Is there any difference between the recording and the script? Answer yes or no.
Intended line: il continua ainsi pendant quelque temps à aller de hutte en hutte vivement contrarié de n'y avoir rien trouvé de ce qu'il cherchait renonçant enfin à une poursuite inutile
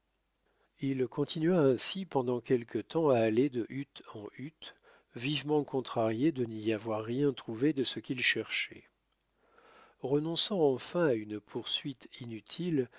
no